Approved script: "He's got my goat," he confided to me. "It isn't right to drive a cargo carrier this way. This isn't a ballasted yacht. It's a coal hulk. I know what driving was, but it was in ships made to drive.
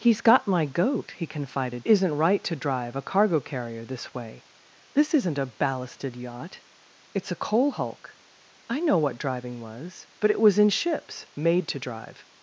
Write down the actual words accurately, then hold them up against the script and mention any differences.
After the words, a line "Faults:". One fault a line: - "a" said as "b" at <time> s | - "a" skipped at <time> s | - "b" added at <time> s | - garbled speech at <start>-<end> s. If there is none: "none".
"He's got my goat," he confided isn't right to drive a cargo carrier this way. This isn't a ballasted yacht. It's a coal hulk. I know what driving was, but it was in ships made to drive.
Faults:
- "to me It" skipped at 1.9 s